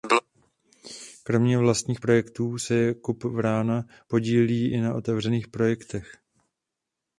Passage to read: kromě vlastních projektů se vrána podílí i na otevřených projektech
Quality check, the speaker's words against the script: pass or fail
fail